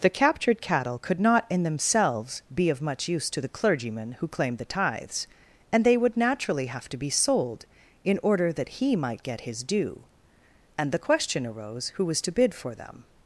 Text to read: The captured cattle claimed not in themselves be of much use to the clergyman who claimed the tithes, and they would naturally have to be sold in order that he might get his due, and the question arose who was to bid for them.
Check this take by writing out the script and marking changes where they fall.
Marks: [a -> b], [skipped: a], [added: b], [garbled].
The captured cattle [claimed -> could] not in themselves be of much use to the clergyman who claimed the tithes, and they would naturally have to be sold in order that he might get his due, and the question arose who was to bid for them.